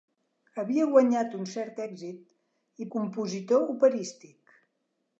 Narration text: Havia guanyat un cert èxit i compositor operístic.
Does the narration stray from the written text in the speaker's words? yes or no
no